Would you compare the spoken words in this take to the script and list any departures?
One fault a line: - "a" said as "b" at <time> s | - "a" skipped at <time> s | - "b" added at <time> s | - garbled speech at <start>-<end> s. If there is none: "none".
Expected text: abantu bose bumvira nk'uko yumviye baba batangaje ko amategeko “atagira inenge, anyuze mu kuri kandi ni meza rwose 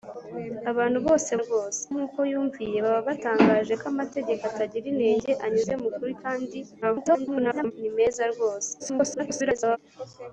- "bumvira" said as "rwose" at 1.4 s
- garbled speech at 6.8-7.7 s
- garbled speech at 8.8-9.8 s